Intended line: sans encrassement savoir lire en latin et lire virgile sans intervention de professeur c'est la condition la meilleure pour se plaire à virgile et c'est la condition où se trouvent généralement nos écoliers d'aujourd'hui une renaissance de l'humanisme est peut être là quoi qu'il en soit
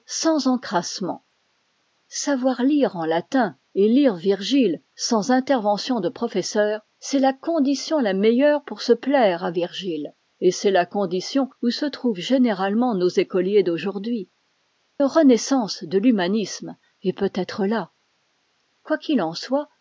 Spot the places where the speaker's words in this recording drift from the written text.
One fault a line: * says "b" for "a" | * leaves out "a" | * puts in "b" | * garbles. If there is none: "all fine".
* leaves out "une"